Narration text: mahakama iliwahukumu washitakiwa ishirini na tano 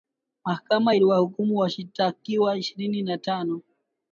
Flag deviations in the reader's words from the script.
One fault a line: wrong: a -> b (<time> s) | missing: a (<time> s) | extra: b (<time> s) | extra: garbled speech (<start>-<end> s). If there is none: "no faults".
no faults